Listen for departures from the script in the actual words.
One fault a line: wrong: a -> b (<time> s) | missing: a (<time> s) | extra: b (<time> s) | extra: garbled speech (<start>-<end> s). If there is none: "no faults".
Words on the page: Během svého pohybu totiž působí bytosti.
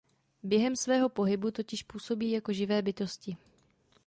extra: jako živé (2.3 s)